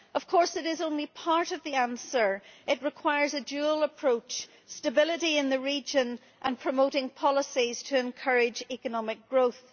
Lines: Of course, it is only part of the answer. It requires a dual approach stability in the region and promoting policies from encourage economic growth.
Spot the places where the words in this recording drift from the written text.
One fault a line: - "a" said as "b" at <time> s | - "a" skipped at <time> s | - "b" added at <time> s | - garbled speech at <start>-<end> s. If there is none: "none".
- "from" said as "to" at 7.8 s